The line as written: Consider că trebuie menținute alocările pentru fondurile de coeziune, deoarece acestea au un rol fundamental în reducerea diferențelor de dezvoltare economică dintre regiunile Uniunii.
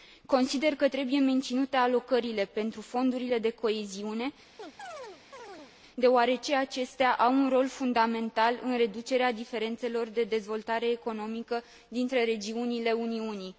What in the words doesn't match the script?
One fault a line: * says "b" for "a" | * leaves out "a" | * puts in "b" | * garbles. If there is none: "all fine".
all fine